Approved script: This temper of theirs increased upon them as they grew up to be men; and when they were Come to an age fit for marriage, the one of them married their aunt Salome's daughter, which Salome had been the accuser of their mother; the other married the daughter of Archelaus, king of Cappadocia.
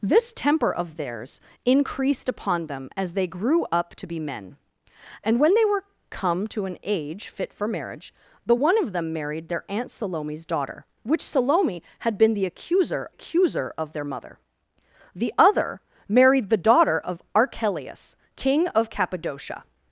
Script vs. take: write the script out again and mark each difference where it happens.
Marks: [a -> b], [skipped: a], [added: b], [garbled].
This temper of theirs increased upon them as they grew up to be men; and when they were Come to an age fit for marriage, the one of them married their aunt Salome's daughter, which Salome had been the accuser [added: accuser] of their mother; the other married the daughter of Archelaus, king of Cappadocia.